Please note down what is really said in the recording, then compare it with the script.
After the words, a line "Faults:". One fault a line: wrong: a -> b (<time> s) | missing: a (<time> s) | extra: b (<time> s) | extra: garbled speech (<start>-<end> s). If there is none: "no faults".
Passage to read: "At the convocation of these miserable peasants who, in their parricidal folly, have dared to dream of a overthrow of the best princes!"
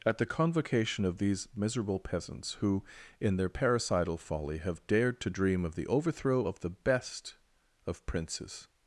"At the convocation of these miserable peasants who, in their parricidal folly, have dared to dream of the overthrow of the best of princes!"
Faults:
wrong: a -> the (5.8 s)
extra: of (7.9 s)